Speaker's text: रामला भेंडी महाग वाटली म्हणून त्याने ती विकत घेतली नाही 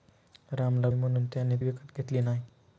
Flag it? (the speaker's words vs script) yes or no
yes